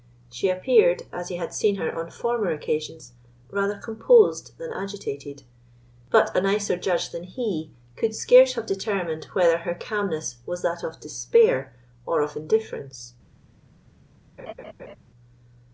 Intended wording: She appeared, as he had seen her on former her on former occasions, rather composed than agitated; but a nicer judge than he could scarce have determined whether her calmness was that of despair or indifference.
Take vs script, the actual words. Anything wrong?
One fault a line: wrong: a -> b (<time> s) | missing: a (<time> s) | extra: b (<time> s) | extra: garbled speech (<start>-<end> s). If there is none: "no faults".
missing: her on former (2.5 s)
extra: of (12.2 s)